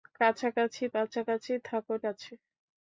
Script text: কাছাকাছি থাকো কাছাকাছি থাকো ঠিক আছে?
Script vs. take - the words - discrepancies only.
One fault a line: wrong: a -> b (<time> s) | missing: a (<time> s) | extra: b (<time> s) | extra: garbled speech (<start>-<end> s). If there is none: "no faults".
missing: থাকো (0.8 s)
missing: ঠিক (1.9 s)